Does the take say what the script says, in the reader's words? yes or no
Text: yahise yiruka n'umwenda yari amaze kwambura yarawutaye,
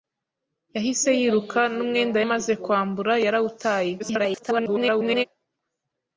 no